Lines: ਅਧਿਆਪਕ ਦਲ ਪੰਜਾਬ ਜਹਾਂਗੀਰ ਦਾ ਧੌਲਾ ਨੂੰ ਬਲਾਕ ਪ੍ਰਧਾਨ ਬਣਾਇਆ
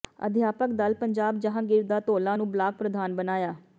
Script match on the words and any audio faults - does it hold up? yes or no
yes